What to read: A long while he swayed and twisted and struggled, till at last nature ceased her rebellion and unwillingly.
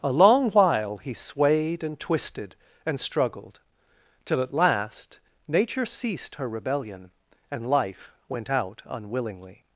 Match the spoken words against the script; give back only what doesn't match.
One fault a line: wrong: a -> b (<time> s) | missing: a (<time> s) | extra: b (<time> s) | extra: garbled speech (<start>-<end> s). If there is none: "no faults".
extra: life went out (7.7 s)